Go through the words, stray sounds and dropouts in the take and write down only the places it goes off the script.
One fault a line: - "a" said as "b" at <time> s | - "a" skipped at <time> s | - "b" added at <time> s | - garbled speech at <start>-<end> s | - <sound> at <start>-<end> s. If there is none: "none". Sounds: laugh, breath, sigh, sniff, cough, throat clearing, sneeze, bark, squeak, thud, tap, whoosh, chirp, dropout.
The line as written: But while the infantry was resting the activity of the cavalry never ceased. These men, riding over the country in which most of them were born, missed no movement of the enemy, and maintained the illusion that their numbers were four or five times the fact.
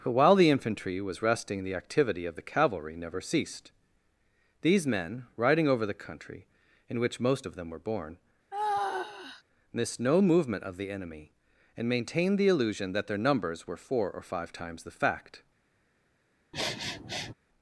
- sigh at 8.5-9.4 s
- sniff at 16.5-17.3 s